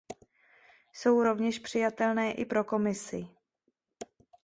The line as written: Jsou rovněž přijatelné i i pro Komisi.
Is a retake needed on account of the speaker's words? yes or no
yes